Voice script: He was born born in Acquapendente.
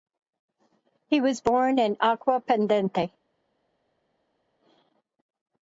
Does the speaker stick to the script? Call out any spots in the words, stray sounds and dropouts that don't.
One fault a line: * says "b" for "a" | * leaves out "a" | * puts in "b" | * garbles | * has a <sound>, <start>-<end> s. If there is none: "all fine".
* leaves out "born"